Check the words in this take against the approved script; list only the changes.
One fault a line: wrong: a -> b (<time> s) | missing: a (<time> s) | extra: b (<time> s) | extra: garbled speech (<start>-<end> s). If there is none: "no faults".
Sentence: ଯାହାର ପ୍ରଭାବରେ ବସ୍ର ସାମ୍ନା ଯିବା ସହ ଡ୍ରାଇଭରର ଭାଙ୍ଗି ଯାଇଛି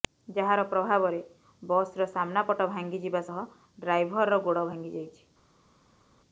extra: ପଟ ଭାଙ୍ଗି (2.5 s)
extra: ଗୋଡ଼ (4.5 s)